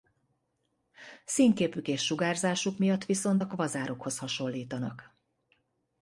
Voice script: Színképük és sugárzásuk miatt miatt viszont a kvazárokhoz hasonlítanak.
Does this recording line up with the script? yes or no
no